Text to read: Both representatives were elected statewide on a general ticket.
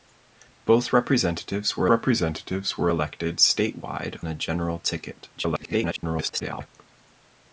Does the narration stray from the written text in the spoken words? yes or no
yes